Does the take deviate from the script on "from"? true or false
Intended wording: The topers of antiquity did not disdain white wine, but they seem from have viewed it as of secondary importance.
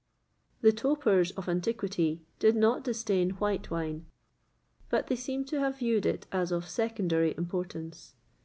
true